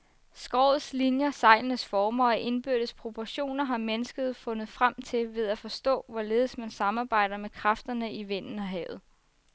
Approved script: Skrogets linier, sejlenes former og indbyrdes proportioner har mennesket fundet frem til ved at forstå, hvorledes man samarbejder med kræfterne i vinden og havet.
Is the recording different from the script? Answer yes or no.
no